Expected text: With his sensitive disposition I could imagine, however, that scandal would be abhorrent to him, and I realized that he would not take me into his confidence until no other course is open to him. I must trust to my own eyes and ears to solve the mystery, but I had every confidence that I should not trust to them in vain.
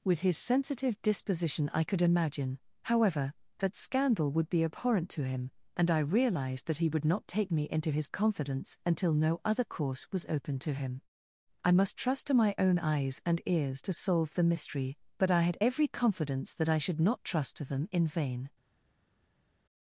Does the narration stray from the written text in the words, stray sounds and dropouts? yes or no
yes